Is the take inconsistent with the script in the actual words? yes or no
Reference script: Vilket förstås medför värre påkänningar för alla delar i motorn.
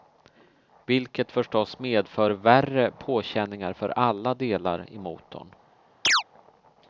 no